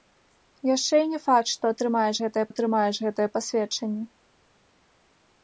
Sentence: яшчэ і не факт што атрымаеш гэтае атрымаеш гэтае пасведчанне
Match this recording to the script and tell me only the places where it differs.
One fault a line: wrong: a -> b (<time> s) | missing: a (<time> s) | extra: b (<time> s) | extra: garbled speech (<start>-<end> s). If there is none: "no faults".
no faults